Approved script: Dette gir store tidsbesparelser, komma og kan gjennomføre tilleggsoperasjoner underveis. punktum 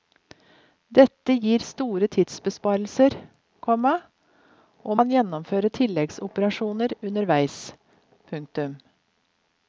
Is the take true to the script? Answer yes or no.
yes